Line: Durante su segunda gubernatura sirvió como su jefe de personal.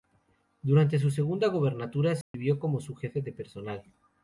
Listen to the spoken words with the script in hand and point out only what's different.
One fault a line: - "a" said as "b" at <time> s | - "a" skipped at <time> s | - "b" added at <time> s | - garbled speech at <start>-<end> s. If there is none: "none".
none